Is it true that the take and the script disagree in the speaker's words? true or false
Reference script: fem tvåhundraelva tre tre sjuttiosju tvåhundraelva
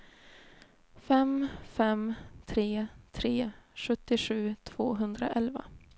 true